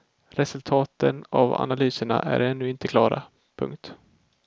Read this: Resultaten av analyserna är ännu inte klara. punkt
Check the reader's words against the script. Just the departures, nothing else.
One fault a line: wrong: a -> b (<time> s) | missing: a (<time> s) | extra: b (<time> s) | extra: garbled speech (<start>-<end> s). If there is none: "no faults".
no faults